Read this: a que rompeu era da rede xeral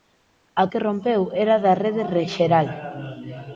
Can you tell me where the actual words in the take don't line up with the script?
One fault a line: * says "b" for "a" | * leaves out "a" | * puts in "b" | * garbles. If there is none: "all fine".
all fine